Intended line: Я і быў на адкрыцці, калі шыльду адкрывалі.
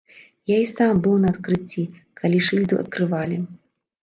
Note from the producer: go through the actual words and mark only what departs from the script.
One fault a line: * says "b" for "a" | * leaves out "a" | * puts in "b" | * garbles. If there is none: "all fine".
* puts in "сам"